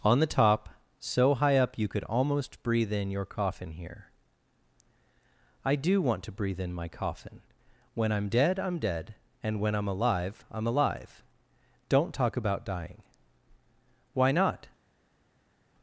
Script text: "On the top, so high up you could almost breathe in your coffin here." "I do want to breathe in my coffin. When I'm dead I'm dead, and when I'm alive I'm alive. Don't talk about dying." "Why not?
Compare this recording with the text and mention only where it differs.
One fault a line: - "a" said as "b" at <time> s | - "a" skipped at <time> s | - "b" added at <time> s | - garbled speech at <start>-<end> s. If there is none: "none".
none